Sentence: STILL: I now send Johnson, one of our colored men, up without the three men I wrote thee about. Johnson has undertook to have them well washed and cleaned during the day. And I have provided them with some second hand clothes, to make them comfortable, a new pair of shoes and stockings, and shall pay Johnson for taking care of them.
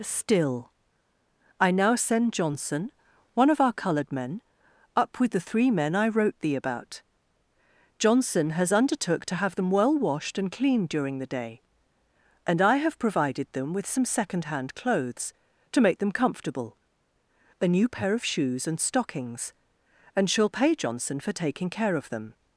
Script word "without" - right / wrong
wrong